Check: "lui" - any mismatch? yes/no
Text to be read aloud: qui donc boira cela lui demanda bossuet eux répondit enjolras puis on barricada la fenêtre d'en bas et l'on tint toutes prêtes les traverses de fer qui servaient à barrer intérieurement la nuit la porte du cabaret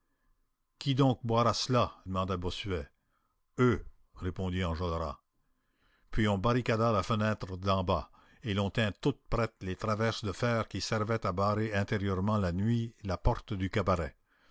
yes